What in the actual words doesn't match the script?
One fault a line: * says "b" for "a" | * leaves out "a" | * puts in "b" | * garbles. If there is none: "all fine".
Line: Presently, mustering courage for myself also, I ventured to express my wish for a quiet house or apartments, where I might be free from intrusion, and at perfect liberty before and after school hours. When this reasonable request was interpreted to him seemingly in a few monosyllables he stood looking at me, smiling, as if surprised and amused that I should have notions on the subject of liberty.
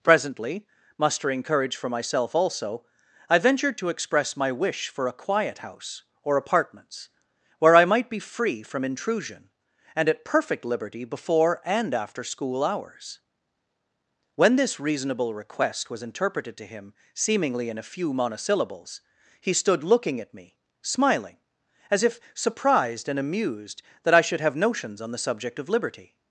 all fine